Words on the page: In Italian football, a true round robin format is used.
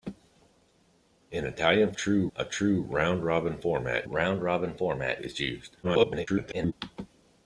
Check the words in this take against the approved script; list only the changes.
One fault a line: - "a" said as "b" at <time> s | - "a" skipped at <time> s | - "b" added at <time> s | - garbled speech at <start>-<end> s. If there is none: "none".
- "football" said as "true" at 1.9 s
- "round robin format" added at 4.0 s
- garbled speech at 5.8-6.7 s